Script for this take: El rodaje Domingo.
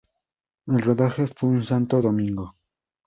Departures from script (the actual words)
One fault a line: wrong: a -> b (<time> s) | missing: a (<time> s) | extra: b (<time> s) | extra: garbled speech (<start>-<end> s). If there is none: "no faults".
extra: fue en Santo (1.3 s)